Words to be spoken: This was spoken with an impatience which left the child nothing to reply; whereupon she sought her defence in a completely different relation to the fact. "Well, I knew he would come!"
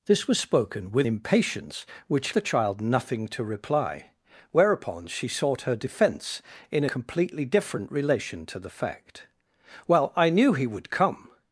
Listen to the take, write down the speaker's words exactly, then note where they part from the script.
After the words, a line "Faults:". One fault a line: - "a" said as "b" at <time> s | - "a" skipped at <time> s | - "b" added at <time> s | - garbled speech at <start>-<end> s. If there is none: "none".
This was spoken with impatience which the child nothing to reply; whereupon she sought her defence in completely different relation to the fact. "Well, I knew he would come!"
Faults:
- "an" skipped at 1.1 s
- "left" skipped at 2.4 s
- "a" skipped at 6.9 s